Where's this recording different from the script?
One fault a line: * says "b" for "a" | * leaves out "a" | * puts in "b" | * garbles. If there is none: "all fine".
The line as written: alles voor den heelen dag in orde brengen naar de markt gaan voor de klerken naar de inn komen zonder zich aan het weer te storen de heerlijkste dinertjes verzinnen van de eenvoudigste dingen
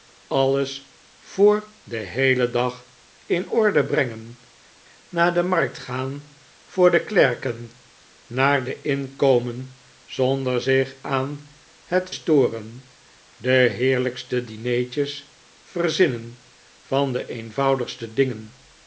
* leaves out "weer te"